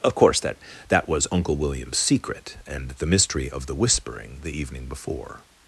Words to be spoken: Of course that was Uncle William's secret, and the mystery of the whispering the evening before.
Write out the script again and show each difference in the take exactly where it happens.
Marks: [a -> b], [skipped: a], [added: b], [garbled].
Of course that [added: that] was Uncle William's secret, and the mystery of the whispering the evening before.